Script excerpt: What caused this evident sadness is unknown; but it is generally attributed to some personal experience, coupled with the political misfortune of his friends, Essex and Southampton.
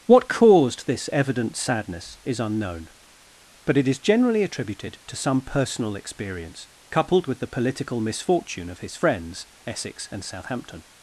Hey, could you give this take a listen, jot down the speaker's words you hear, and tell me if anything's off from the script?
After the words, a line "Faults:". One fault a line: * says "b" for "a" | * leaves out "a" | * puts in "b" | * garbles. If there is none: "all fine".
What caused this evident sadness is unknown; but it is generally attributed to some personal experience, coupled with the political misfortune of his friends, Essex and Southampton.
Faults:
all fine